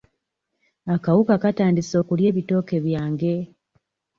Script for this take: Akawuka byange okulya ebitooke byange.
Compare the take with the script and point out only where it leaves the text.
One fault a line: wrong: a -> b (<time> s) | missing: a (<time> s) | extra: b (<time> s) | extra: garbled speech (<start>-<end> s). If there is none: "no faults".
wrong: byange -> katandise (1.4 s)